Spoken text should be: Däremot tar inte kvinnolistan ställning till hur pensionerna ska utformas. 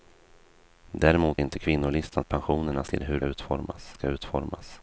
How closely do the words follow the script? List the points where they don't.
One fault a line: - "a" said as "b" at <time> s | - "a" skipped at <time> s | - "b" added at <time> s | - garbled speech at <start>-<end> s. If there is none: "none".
- "tar" skipped at 1.4 s
- "ställning" said as "pensionerna" at 2.2 s
- "pensionerna" said as "utformas" at 3.2 s